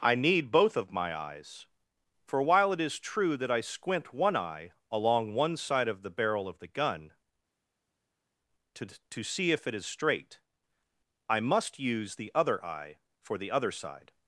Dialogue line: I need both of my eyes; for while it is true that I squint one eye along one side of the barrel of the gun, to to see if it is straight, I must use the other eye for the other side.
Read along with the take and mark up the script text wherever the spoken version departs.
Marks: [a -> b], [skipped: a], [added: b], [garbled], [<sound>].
I need both of my eyes; for while it is true that I squint one eye along one side of the barrel of the gun, to to see if it is straight, I must use the other eye for the other side.